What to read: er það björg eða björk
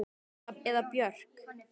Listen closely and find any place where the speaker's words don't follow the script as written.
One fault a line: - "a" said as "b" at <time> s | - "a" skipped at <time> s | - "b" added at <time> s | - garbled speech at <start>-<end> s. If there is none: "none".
- "björg" skipped at 0.6 s